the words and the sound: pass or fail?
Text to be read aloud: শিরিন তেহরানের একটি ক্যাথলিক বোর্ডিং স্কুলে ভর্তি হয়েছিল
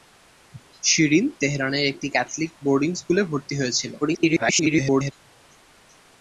fail